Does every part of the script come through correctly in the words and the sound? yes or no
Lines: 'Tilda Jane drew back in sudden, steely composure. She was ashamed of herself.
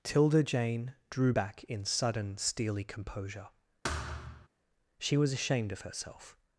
no